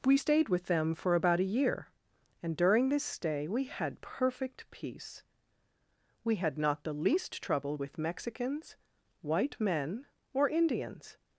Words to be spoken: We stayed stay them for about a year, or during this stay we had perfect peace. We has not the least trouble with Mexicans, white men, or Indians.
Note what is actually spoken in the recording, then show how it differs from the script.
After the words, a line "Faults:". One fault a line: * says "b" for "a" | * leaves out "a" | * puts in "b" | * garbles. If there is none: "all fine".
We stayed with them for about a year, and during this stay we had perfect peace. We had not the least trouble with Mexicans, white men, or Indians.
Faults:
* says "with" for "stay"
* says "and" for "or"
* says "had" for "has"